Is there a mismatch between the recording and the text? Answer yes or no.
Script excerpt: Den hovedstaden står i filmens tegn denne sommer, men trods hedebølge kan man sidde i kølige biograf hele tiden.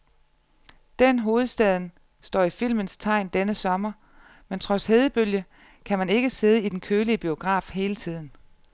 yes